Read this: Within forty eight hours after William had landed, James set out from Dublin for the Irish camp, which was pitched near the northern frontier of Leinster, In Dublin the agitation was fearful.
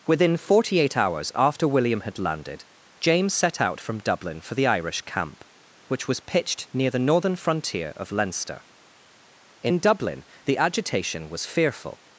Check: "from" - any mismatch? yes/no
no